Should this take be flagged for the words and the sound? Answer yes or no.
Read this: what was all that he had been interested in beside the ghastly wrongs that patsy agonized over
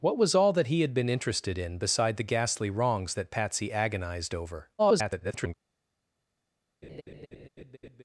yes